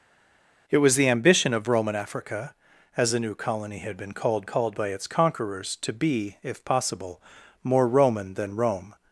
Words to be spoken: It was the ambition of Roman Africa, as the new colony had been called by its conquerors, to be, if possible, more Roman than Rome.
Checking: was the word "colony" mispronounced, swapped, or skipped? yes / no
no